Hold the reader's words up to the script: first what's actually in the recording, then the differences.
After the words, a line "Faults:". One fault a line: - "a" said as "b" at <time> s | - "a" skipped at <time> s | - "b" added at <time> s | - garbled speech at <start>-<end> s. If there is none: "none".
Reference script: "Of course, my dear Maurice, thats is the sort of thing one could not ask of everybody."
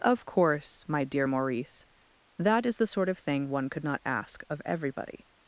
"Of course, my dear Maurice, that is the sort of thing one could not ask of everybody."
Faults:
- "thats" said as "that" at 2.4 s